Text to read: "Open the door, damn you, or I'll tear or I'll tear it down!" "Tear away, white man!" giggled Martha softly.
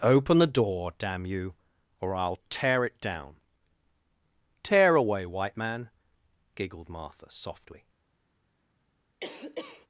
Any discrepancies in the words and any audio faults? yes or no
yes